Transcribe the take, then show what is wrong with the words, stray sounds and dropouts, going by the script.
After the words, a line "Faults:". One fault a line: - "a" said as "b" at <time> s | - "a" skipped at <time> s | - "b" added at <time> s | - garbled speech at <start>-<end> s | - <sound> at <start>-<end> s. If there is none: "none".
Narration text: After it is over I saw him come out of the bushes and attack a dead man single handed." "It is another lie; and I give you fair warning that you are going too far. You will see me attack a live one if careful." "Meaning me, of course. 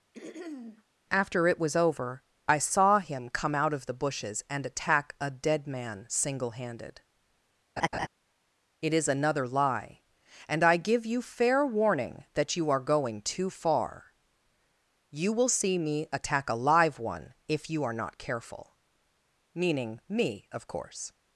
After it was over I saw him come out of the bushes and attack a dead man single handed." "It is another lie; and I give you fair warning that you are going too far. You will see me attack a live one if you are not careful." "Meaning me, of course.
Faults:
- throat clearing at 0.1-0.8 s
- "is" said as "was" at 1.6 s
- laugh at 7.8-8.1 s
- "you are not" added at 17.7 s